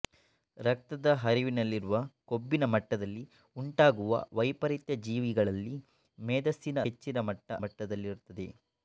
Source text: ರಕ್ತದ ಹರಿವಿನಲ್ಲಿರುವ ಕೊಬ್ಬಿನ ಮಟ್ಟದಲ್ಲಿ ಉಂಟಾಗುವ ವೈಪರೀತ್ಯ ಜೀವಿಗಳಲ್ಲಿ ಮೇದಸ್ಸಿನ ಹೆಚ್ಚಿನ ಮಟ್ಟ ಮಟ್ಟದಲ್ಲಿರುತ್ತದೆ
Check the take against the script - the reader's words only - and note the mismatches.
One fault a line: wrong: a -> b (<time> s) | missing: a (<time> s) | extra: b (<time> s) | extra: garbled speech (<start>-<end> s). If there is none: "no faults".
no faults